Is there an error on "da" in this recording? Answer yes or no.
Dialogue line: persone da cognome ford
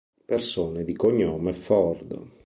yes